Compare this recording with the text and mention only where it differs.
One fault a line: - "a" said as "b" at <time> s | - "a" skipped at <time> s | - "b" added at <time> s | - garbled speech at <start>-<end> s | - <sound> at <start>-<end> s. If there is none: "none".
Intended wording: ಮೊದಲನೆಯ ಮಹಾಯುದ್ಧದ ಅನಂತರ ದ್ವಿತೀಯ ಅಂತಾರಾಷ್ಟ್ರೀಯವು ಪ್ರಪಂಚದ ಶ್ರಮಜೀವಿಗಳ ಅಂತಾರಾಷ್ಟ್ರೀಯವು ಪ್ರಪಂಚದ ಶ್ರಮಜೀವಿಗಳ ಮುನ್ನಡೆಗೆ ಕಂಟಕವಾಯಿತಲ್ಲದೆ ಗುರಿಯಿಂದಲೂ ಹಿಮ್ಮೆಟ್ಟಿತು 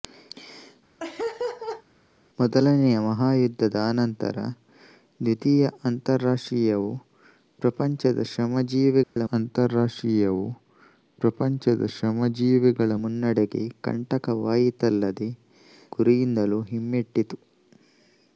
- laugh at 1.0-1.8 s
- dropout at 9.0-9.2 s